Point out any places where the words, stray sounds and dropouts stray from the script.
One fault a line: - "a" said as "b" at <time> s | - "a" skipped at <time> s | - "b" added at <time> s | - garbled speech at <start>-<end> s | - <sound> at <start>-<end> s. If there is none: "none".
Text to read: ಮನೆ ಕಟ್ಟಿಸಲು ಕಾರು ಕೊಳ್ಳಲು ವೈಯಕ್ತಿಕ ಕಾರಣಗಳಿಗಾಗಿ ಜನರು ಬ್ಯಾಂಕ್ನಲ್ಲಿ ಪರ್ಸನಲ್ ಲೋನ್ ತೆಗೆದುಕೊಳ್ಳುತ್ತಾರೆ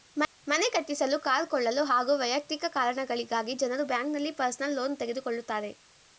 - "ಹಾಗೂ" added at 1.8 s